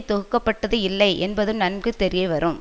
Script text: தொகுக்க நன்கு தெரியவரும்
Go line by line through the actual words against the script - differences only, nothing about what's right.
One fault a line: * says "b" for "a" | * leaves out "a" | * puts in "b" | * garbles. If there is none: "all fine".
* puts in "பட்டது இல்லை என்பதும்"